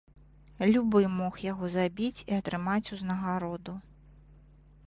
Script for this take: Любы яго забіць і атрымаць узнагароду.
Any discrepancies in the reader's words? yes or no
yes